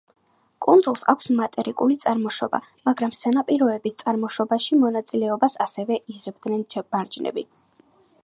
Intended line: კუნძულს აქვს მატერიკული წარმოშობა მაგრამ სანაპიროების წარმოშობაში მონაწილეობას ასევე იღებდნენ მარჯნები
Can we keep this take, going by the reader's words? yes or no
yes